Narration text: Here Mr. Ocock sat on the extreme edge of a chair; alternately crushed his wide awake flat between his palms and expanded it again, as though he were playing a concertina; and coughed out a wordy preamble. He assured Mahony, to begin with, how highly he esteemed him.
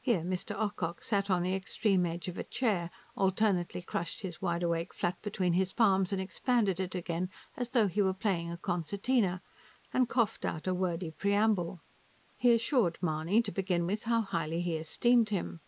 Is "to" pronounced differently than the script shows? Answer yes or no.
no